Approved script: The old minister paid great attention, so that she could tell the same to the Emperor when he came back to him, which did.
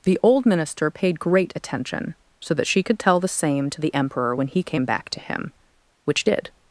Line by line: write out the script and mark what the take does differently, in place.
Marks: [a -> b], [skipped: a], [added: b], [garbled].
The old minister paid great attention, so that she could tell the same to the Emperor when he came back to him, which did.